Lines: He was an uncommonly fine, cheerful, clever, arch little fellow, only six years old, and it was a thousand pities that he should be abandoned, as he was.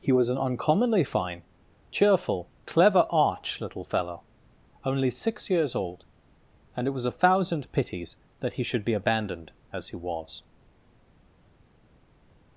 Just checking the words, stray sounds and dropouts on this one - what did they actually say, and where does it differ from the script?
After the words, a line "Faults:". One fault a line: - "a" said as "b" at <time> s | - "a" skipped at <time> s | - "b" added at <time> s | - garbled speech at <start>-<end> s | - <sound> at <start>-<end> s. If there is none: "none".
He was an uncommonly fine, cheerful, clever, arch little fellow, only six years old, and it was a thousand pities that he should be abandoned, as he was.
Faults:
none